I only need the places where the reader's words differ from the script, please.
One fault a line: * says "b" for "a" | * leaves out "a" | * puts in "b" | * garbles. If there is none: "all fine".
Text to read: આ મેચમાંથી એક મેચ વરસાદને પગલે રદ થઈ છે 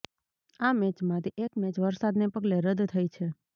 all fine